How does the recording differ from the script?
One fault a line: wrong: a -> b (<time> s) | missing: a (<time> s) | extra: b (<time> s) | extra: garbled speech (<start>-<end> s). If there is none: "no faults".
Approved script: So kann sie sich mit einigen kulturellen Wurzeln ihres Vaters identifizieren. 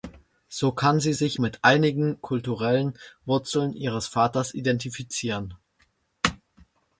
no faults